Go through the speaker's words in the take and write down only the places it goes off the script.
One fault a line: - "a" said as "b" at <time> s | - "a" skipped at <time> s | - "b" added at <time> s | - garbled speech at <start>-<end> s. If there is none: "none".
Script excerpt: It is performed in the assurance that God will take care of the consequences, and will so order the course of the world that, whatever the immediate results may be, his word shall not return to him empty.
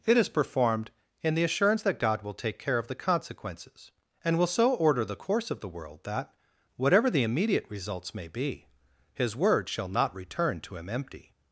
none